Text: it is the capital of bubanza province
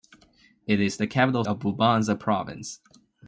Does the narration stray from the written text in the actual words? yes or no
no